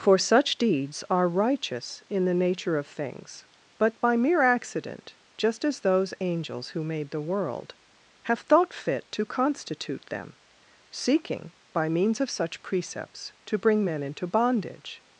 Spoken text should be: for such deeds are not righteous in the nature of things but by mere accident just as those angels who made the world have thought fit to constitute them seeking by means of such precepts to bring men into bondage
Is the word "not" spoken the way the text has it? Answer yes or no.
no